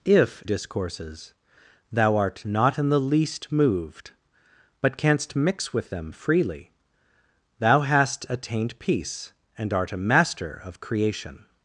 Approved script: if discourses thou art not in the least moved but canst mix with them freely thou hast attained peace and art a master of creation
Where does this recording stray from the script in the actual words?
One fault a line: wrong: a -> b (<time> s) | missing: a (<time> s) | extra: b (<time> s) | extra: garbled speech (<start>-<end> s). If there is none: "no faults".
no faults